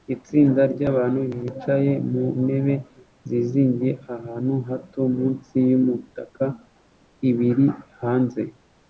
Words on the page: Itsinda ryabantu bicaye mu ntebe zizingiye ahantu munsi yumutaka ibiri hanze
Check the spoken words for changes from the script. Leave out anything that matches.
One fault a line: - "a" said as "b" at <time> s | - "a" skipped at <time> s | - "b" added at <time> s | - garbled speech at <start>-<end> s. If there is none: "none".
- "hato" added at 4.7 s